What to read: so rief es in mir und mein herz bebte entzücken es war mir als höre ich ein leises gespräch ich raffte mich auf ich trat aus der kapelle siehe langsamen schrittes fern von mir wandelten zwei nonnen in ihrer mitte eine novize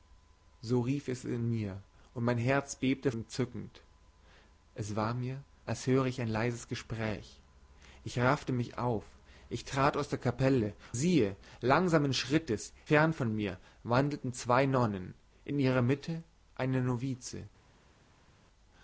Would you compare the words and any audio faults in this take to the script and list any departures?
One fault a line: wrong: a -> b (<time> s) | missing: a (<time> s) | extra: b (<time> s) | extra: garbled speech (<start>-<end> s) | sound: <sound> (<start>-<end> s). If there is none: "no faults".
no faults